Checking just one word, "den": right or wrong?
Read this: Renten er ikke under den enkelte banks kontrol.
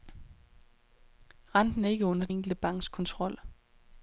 wrong